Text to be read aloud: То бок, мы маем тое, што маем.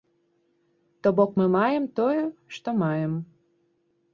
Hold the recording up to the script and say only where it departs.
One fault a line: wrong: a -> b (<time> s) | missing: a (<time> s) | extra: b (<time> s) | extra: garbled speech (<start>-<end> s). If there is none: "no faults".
no faults